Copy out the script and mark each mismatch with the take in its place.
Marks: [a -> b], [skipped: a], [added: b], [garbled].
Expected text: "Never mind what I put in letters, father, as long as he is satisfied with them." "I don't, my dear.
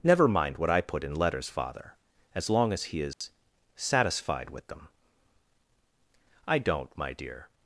"Never mind what I put in letters, father, as long as he is satisfied with them." "I don't, my dear.